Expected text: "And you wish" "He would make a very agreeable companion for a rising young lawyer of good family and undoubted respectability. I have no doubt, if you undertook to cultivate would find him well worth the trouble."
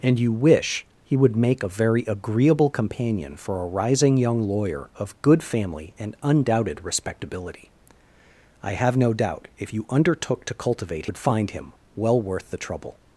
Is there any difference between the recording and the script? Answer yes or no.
no